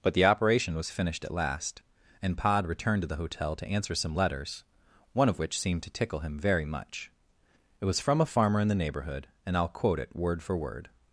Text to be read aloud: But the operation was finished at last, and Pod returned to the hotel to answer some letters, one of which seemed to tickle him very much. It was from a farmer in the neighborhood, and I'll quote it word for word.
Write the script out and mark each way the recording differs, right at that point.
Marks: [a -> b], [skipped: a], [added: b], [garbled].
But the operation was finished at last, and Pod returned to the hotel to answer some letters, one of which seemed to tickle him very much. It was from a farmer in the neighborhood, and I'll quote it word for word.